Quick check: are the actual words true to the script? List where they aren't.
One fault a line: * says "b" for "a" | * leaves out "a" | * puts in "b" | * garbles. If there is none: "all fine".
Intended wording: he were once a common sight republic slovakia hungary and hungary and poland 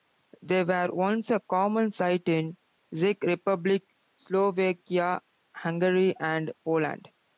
* says "they" for "he"
* puts in "in czech"
* leaves out "hungary and"